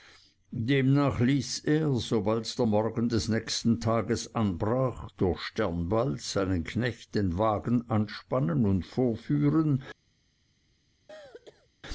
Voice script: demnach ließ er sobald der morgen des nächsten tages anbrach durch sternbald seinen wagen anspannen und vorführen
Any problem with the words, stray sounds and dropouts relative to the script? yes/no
yes